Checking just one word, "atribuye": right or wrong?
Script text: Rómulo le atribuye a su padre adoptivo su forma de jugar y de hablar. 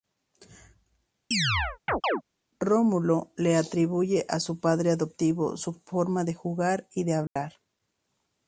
right